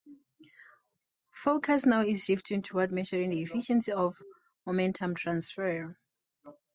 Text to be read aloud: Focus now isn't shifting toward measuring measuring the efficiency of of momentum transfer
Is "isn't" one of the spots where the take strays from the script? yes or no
yes